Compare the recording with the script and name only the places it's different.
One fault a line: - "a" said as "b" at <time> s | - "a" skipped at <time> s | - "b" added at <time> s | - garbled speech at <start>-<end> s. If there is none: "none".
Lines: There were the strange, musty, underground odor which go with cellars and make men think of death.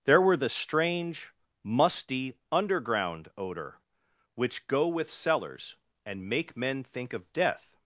none